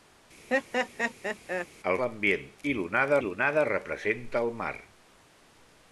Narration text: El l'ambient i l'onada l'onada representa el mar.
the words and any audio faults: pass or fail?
fail